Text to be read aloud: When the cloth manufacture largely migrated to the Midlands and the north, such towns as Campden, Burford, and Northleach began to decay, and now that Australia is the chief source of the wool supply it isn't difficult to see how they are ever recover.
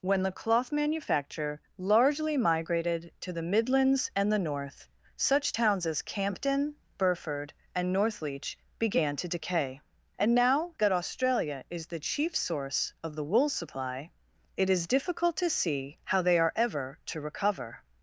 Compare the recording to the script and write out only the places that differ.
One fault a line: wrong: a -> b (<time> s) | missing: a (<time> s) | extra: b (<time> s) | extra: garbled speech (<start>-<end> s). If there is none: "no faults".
wrong: isn't -> is (14.7 s)
extra: to (17.1 s)